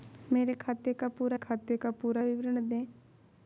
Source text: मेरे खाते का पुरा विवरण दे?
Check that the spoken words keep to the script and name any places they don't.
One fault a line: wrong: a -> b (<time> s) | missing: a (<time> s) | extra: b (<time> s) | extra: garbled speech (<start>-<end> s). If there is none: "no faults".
extra: खाते का पुरा (1.3 s)